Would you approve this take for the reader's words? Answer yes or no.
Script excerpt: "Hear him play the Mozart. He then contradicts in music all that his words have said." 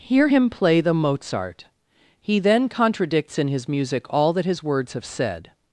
no